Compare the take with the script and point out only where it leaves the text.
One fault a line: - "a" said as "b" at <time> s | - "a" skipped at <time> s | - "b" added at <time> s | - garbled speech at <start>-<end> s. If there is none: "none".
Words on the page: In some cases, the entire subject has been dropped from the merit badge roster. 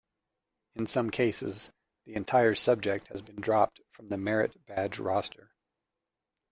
none